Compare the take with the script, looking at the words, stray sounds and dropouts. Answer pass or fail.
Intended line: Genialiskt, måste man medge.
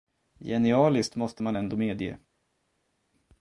fail